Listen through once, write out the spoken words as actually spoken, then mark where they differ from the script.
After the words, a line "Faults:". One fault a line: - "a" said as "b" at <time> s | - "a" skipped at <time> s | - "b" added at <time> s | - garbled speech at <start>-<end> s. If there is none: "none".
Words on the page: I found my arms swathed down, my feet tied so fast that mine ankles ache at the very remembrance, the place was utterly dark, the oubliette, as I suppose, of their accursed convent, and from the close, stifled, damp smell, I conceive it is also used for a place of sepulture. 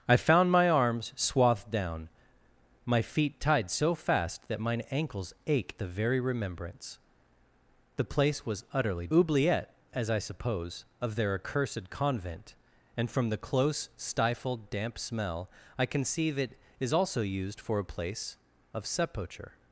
I found my arms swathed down, my feet tied so fast that mine ankles ache the very remembrance, the place was utterly oubliette, as I suppose, of their accursed convent, and from the close, stifled, damp smell, I conceive it is also used for a place of sepulture.
Faults:
- "at" skipped at 5.7 s
- "dark the" skipped at 9.1 s